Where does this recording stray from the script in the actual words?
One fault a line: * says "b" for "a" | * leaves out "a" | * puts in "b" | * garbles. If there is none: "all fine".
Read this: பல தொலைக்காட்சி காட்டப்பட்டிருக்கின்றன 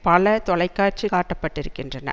all fine